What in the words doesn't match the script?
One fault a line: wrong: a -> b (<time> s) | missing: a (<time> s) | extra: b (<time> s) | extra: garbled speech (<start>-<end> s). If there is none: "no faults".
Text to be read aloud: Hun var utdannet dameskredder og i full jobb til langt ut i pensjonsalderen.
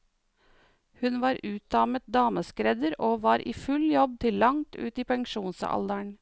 extra: var (3.2 s)